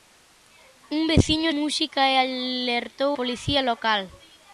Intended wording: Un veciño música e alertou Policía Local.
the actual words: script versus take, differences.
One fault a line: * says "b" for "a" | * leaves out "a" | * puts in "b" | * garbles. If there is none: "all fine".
all fine